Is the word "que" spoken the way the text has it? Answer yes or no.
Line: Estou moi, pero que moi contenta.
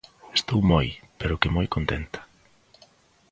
yes